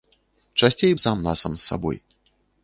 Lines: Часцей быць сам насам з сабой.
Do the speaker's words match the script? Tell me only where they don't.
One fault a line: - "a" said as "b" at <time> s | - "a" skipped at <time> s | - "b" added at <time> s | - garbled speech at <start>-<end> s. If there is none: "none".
- "быць" skipped at 0.9 s